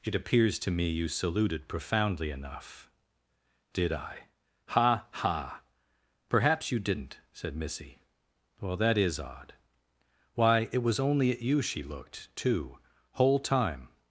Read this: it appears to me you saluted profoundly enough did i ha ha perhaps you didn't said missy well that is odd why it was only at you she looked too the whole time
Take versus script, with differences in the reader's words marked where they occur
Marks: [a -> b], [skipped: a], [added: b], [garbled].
it appears to me you saluted profoundly enough did i ha ha perhaps you didn't said missy well that is odd why it was only at you she looked too [skipped: the] whole time